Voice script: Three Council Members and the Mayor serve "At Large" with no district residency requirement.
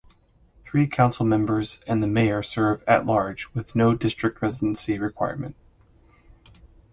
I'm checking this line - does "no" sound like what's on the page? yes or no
yes